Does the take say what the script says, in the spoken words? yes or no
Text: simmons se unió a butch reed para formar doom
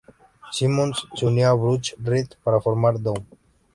yes